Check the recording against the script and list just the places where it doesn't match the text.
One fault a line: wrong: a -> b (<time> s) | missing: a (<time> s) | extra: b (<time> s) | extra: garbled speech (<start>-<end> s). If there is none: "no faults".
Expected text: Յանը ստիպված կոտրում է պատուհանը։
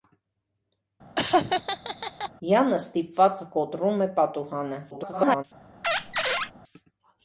extra: garbled speech (4.9-5.4 s)